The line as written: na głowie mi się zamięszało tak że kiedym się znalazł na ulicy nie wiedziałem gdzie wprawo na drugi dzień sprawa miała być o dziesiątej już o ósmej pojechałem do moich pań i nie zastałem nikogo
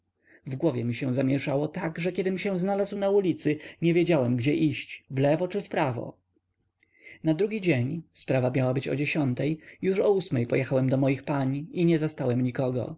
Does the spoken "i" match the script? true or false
true